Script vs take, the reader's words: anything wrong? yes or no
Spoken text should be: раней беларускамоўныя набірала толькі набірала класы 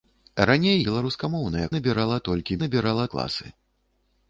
no